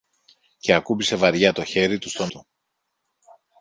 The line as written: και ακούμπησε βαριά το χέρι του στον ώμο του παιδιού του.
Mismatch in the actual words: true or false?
true